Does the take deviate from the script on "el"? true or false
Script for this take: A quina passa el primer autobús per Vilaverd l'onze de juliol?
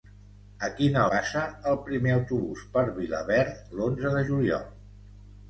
false